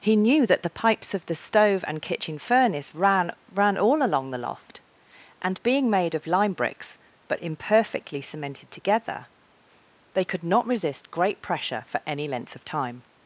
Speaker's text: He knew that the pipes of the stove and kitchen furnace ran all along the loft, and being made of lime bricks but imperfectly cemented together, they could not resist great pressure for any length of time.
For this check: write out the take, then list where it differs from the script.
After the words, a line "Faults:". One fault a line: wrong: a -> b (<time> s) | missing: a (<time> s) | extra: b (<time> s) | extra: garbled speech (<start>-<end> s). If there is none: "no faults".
He knew that the pipes of the stove and kitchen furnace ran ran all along the loft, and being made of lime bricks but imperfectly cemented together, they could not resist great pressure for any length of time.
Faults:
extra: ran (3.5 s)